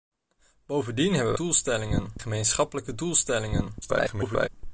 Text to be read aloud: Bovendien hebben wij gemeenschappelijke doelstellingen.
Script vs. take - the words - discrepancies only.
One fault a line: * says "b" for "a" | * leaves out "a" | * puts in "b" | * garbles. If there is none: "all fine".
* says "doelstellingen" for "wij"
* garbles